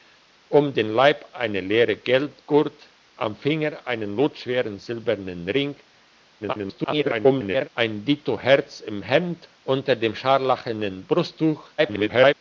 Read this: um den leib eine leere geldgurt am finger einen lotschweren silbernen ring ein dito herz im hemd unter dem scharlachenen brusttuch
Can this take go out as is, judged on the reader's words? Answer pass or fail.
fail